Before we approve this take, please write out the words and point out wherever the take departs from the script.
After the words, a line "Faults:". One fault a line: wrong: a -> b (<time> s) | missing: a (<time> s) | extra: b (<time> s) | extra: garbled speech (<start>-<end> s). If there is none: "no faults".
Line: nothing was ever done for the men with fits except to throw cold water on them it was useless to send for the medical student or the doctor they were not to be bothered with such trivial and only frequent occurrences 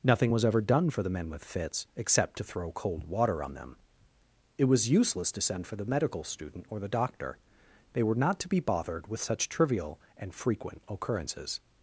nothing was ever done for the men with fits except to throw cold water on them it was useless to send for the medical student or the doctor they were not to be bothered with such trivial and frequent occurrences
Faults:
missing: only (10.3 s)